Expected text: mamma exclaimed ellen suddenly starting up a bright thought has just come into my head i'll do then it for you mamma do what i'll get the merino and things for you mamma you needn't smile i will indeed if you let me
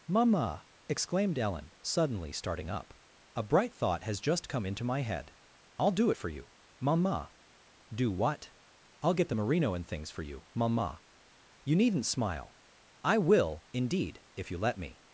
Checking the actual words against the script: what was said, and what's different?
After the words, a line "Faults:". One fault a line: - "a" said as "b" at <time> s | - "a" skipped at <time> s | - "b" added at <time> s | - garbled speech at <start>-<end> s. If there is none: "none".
mamma exclaimed ellen suddenly starting up a bright thought has just come into my head i'll do it for you mamma do what i'll get the merino and things for you mamma you needn't smile i will indeed if you let me
Faults:
- "then" skipped at 6.1 s